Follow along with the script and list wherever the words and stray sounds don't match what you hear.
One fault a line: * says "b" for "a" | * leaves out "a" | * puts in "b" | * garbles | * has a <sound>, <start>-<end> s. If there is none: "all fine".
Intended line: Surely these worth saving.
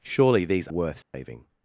* has a dropout, 1.0-1.1 s